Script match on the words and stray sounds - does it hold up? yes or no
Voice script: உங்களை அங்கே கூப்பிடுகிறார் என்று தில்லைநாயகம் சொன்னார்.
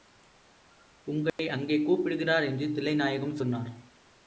no